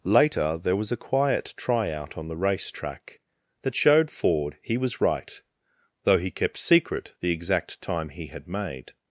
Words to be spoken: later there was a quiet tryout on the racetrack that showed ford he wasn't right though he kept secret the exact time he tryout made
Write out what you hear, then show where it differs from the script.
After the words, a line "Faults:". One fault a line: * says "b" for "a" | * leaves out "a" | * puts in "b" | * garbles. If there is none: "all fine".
later there was a quiet tryout on the racetrack that showed ford he was right though he kept secret the exact time he had made
Faults:
* says "was" for "wasn't"
* says "had" for "tryout"